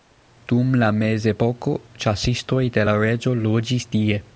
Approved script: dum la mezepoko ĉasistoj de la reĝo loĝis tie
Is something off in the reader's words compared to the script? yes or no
no